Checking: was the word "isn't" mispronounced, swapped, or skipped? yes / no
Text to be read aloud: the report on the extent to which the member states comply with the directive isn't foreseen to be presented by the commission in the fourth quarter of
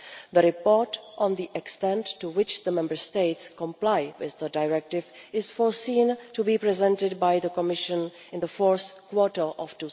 yes